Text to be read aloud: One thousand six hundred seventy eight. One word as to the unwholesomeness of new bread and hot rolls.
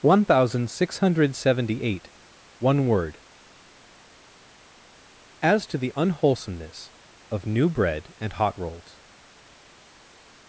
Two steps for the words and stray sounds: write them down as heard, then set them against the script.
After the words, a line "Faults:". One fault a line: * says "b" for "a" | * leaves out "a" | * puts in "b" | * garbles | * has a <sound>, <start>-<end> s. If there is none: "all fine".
One thousand six hundred seventy eight. One word as to the unwholesomeness of new bread and hot rolls.
Faults:
all fine